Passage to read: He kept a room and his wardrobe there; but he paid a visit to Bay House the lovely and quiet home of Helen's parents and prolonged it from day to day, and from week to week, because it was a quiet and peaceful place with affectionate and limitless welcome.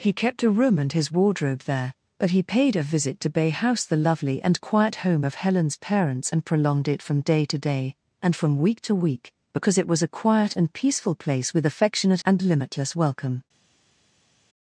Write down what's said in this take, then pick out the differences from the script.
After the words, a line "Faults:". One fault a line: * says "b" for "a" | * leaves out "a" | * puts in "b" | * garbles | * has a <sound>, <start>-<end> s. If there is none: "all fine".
He kept a room and his wardrobe there; but he paid a visit to Bay House the lovely and quiet home of Helen's parents and prolonged it from day to day, and from week to week, because it was a quiet and peaceful place with affectionate and limitless welcome.
Faults:
all fine